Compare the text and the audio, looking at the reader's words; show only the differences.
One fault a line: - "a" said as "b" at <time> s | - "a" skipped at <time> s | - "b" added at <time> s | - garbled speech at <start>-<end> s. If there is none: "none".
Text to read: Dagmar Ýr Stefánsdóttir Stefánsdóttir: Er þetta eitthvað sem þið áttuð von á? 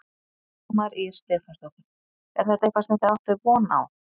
- "Stefánsdóttir" skipped at 1.9 s